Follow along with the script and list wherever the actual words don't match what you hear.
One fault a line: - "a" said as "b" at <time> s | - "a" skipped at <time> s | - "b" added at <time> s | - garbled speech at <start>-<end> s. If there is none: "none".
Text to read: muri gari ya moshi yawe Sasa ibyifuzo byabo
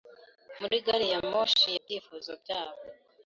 - "yawe Sasa" skipped at 1.7 s